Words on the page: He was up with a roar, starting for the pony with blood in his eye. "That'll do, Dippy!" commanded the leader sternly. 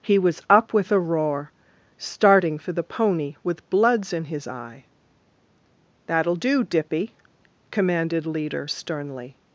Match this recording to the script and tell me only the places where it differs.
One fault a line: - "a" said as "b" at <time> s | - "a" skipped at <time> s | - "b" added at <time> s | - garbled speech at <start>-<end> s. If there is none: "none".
- "blood" said as "bloods" at 3.7 s
- "the" skipped at 8.2 s